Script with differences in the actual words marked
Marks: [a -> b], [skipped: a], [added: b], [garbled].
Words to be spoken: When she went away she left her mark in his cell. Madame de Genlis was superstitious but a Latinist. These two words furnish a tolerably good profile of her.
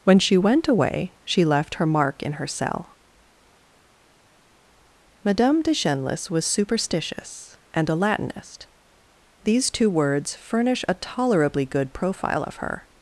When she went away she left her mark in [his -> her] cell. Madame de Genlis was superstitious [but -> and] a Latinist. These two words furnish a tolerably good profile of her.